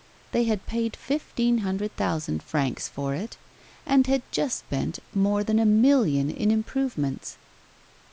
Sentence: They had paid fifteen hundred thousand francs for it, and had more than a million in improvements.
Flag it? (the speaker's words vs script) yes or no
yes